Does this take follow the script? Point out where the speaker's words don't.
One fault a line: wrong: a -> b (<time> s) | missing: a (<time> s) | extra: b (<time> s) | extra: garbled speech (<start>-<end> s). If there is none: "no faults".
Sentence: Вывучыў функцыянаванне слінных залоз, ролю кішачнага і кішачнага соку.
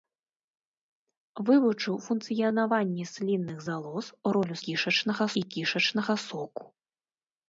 no faults